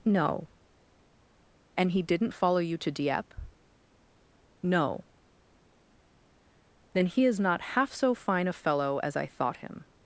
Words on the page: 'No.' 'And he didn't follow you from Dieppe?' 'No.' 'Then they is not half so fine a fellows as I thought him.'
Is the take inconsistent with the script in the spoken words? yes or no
yes